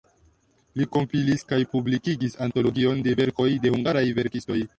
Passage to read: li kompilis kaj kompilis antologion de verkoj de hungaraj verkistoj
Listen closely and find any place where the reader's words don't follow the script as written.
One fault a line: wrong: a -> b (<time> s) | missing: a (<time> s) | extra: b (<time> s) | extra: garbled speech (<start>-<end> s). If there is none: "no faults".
wrong: kompilis -> publikigis (1.8 s)